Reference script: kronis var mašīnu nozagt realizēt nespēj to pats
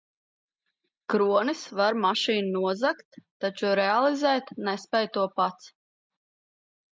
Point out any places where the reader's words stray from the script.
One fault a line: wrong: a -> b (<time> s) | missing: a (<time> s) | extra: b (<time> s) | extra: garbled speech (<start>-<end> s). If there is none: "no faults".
extra: taču (3.5 s)